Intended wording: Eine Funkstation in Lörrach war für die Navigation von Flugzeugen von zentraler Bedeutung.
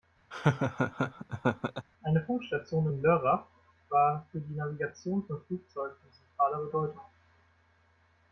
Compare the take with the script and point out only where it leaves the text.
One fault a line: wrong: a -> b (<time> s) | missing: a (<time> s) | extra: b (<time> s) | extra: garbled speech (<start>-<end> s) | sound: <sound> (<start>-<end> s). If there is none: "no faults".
sound: laugh (0.3-1.9 s)